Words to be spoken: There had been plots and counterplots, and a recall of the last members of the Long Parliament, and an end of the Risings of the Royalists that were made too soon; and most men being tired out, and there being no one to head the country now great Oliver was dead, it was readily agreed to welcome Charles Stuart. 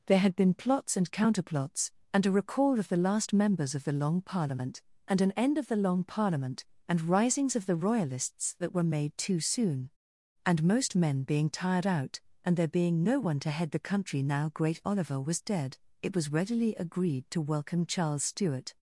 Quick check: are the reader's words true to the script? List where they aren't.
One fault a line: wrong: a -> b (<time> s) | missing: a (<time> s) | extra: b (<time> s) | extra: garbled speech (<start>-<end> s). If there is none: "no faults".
extra: Long Parliament and (5.8 s)